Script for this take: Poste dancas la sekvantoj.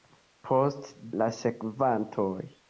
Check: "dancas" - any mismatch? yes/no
yes